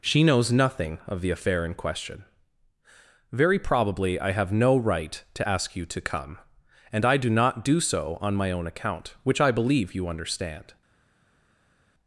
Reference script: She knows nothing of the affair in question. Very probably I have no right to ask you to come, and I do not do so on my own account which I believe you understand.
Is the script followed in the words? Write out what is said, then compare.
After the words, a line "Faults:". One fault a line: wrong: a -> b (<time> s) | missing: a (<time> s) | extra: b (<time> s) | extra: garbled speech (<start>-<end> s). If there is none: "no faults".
She knows nothing of the affair in question. Very probably I have no right to ask you to come, and I do not do so on my own account which I believe you understand.
Faults:
no faults